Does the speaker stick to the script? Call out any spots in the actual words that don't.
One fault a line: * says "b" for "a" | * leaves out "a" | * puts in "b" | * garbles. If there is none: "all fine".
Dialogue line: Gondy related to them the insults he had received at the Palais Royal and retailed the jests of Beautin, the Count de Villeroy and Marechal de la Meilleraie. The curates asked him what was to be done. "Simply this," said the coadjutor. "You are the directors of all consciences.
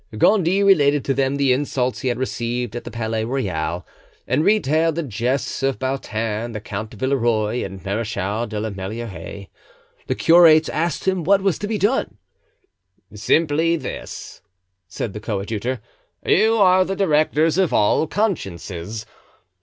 all fine